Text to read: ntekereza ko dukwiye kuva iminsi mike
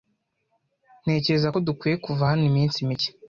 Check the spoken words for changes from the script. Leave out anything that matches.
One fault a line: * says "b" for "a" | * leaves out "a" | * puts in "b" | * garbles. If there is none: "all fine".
* puts in "hano"